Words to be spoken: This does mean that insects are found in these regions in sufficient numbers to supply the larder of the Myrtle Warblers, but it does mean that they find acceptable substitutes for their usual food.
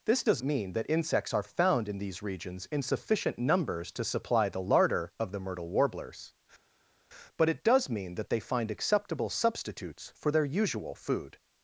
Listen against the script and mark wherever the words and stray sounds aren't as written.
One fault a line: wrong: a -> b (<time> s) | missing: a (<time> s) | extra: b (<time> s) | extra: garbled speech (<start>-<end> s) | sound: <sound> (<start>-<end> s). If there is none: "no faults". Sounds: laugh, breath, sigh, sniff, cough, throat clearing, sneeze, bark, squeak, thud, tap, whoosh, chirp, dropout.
no faults